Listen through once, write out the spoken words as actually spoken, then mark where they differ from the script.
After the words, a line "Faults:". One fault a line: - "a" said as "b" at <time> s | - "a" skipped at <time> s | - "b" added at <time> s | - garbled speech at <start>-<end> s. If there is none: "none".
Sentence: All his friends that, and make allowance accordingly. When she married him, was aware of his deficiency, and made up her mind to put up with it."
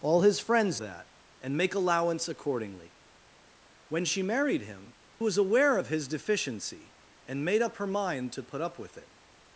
All his friends that, and make allowance accordingly. When she married him, was aware of his deficiency, and made up her mind to put up with it."
Faults:
none